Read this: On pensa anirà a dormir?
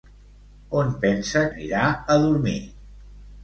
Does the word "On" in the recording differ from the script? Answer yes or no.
no